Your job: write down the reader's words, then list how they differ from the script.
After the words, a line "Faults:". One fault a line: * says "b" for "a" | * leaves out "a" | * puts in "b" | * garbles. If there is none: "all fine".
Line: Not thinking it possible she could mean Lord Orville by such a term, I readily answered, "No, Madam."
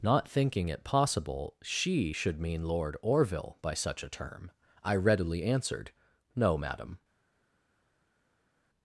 Not thinking it possible she should mean Lord Orville by such a term, I readily answered, "No, Madam."
Faults:
* says "should" for "could"